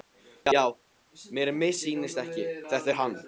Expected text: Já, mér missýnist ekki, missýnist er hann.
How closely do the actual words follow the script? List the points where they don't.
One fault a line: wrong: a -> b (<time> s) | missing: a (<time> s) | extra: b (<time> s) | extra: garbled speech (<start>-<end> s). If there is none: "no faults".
wrong: missýnist -> þetta (2.7 s)